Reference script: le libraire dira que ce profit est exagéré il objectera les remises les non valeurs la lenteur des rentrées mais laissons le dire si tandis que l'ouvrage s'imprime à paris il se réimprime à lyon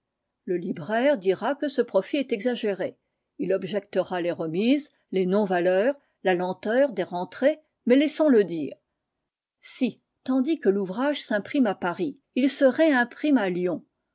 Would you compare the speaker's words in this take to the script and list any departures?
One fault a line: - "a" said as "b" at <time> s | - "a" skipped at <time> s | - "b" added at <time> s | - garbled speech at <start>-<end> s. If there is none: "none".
none